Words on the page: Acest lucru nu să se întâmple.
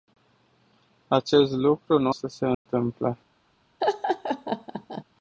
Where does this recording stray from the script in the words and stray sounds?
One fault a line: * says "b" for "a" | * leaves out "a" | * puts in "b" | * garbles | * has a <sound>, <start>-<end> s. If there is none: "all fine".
* has a dropout, 2.5-2.7 s
* has a laugh, 3.8-5.0 s